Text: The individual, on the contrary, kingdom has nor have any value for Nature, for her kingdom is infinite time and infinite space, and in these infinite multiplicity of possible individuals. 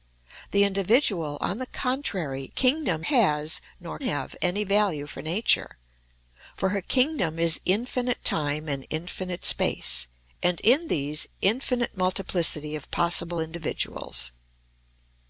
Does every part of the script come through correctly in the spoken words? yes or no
yes